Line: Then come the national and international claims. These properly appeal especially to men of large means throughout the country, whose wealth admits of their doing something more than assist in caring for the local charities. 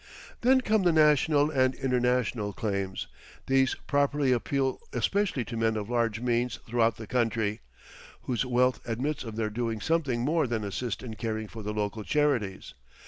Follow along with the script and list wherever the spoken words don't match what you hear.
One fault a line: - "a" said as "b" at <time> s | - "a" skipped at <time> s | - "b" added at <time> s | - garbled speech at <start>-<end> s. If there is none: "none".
none